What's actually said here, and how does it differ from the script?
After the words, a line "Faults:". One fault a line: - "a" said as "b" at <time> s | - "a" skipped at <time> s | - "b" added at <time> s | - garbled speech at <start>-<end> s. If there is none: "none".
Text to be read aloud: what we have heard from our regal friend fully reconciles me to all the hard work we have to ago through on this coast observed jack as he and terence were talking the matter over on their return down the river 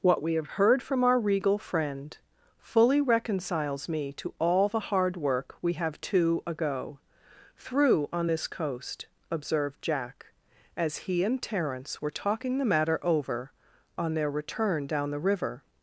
what we have heard from our regal friend fully reconciles me to all the hard work we have to ago through on this coast observed jack as he and terence were talking the matter over on their return down the river
Faults:
none